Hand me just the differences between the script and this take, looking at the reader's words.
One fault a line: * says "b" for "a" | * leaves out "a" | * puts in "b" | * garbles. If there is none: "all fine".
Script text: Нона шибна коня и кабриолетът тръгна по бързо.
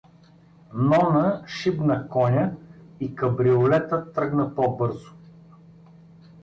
all fine